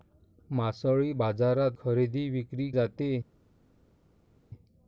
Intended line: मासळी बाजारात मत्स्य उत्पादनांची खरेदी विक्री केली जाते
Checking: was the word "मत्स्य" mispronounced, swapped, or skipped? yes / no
yes